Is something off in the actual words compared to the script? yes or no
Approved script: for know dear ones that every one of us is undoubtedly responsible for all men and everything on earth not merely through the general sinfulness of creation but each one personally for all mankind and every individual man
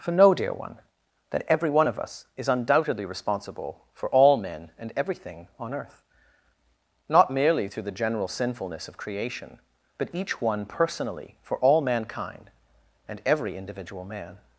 yes